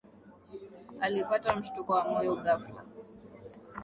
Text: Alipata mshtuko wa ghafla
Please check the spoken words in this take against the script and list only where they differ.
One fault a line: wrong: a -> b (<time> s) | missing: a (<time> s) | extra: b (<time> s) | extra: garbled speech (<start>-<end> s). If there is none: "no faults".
extra: moyo (2.1 s)